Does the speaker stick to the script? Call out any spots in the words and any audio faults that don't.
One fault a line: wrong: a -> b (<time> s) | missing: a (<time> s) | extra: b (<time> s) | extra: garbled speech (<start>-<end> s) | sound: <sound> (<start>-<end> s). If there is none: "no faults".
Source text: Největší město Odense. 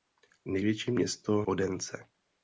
no faults